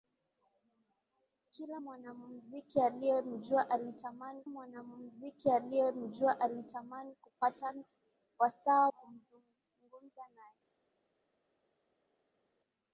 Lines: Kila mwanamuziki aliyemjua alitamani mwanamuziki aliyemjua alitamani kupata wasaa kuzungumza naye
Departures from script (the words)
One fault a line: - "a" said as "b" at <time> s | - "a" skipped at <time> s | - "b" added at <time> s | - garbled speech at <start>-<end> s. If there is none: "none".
none